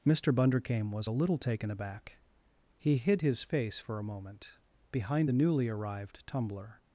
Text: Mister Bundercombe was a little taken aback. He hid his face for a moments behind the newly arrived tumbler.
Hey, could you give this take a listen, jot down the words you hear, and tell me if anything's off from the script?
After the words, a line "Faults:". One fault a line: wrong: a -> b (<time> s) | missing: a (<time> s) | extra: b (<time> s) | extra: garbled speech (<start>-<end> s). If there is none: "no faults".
Mister Bundercombe was a little taken aback. He hid his face for a moment behind the newly arrived tumbler.
Faults:
wrong: moments -> moment (4.0 s)